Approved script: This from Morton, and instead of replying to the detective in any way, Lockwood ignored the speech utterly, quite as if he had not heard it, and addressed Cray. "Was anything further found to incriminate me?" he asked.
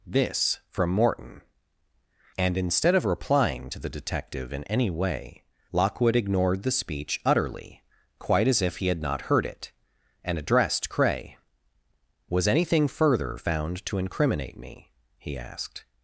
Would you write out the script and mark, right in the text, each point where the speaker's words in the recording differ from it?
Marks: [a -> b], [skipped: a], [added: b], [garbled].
This from Morton, and instead of replying to the detective in any way, Lockwood ignored the speech utterly, quite as if he had not heard it, and addressed Cray. "Was anything further found to incriminate me?" he asked.